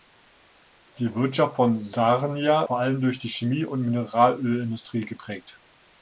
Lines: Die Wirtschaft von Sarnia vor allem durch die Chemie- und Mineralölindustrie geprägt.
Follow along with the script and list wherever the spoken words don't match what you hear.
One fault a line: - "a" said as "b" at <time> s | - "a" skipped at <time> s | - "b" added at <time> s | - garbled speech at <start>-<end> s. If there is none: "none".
none